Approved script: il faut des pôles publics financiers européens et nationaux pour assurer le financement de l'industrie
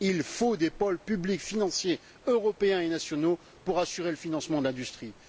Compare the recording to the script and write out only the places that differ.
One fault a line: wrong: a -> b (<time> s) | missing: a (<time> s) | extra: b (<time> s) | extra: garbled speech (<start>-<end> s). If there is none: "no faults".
no faults